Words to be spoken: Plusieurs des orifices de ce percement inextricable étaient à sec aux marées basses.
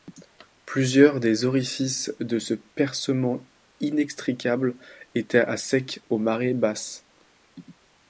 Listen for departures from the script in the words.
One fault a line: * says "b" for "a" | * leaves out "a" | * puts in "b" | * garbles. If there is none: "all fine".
all fine